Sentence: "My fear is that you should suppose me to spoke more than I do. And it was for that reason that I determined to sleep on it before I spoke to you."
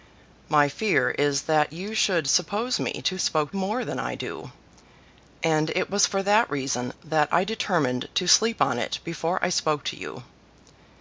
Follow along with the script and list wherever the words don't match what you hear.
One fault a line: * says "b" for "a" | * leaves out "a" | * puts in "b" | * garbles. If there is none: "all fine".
all fine